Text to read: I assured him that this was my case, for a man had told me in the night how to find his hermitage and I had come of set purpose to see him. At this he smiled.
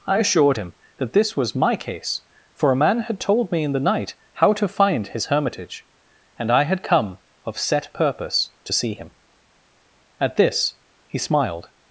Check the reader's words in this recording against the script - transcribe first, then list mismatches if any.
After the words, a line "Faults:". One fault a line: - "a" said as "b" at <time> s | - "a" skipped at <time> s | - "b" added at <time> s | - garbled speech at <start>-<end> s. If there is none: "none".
I assured him that this was my case, for a man had told me in the night how to find his hermitage and I had come of set purpose to see him. At this he smiled.
Faults:
none